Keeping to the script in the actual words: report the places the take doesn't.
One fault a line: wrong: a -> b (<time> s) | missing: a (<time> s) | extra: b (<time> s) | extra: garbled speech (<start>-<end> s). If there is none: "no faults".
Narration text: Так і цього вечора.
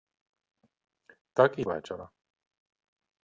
missing: цього (1.6 s)